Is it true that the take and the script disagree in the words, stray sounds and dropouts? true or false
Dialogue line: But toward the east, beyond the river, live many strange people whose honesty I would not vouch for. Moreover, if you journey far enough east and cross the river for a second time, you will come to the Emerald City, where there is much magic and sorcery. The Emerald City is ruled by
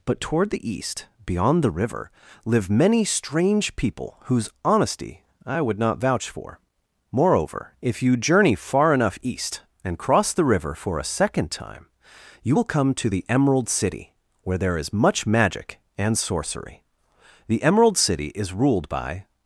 false